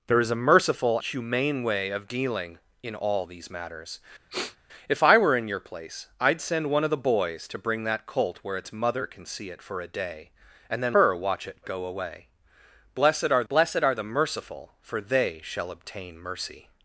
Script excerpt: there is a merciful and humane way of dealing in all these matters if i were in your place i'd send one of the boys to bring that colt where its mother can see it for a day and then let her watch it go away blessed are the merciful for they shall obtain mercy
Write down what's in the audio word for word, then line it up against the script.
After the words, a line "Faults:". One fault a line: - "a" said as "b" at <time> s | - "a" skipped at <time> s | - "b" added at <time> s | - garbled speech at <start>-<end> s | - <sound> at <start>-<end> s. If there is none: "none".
there is a merciful humane way of dealing in all these matters if i were in your place i'd send one of the boys to bring that colt where its mother can see it for a day and then her watch it go away blessed are blessed are the merciful for they shall obtain mercy
Faults:
- "and" skipped at 1.0 s
- sniff at 4.3-4.6 s
- "let" skipped at 11.0 s
- "blessed are" added at 13.5 s